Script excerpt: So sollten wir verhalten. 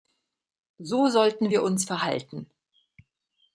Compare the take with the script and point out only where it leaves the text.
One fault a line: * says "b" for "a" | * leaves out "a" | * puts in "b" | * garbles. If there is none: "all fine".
* puts in "uns"